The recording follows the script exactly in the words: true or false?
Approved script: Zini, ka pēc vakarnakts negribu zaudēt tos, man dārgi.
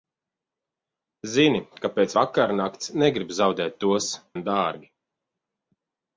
true